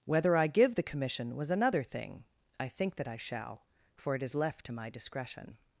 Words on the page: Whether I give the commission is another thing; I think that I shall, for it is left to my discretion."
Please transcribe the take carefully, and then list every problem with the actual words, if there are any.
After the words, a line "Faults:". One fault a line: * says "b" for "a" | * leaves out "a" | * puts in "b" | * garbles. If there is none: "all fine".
Whether I give the commission was another thing; I think that I shall, for it is left to my discretion."
Faults:
* says "was" for "is"